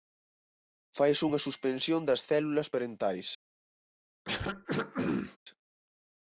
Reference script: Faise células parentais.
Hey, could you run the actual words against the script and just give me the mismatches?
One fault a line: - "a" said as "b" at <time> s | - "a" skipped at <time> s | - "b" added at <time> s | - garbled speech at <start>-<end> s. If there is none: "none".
- "unha suspensión das" added at 1.3 s